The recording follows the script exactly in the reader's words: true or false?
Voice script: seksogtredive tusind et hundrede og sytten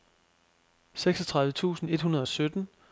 true